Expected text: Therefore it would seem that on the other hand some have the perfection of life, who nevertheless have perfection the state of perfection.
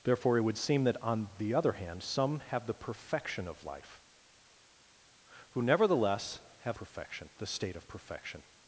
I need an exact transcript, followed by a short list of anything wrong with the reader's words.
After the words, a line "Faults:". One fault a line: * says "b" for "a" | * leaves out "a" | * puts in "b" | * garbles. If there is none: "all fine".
Therefore it would seem that on the other hand some have the perfection of life, who nevertheless have perfection the state of perfection.
Faults:
all fine